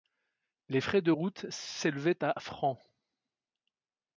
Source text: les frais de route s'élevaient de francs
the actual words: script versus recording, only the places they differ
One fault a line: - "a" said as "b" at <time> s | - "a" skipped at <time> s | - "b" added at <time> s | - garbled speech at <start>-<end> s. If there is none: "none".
- "de" said as "à" at 2.2 s